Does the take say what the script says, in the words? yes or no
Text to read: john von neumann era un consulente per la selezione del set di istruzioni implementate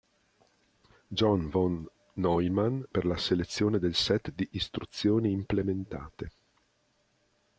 no